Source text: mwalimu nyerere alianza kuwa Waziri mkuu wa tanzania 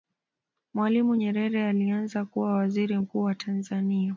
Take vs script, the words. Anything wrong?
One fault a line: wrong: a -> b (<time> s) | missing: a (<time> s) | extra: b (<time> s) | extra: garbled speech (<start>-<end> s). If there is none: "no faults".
no faults